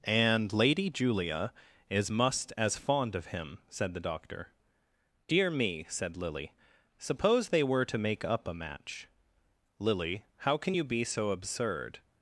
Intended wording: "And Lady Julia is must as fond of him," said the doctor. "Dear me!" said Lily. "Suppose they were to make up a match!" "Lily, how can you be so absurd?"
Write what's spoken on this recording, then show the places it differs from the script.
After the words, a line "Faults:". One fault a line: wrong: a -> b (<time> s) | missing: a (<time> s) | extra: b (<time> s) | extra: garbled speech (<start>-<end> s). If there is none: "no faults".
"And Lady Julia is must as fond of him," said the doctor. "Dear me!" said Lily. "Suppose they were to make up a match!" "Lily, how can you be so absurd?"
Faults:
no faults